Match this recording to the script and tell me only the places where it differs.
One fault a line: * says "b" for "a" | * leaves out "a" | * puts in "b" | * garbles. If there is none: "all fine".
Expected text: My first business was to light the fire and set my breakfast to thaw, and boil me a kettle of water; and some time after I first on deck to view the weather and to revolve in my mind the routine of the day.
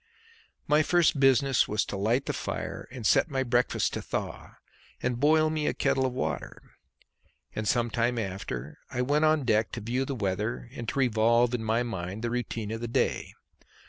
* says "went" for "first"